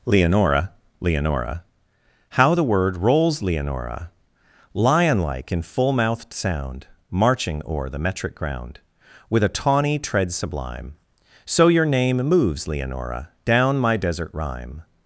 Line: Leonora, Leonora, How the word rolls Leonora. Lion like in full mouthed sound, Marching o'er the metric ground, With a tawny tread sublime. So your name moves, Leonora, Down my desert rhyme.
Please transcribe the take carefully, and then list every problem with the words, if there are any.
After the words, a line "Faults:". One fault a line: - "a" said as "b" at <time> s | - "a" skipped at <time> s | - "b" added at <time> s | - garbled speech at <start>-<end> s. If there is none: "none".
Leonora, Leonora, How the word rolls Leonora. Lion like in full mouthed sound, Marching o'er the metric ground, With a tawny tread sublime. So your name moves, Leonora, Down my desert rhyme.
Faults:
none